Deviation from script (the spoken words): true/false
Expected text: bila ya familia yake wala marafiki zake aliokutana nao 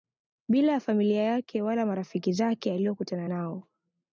false